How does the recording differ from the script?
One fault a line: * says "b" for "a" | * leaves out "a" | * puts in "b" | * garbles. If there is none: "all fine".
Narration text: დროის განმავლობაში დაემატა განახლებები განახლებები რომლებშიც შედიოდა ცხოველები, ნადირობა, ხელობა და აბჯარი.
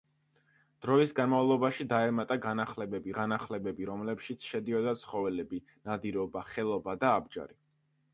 all fine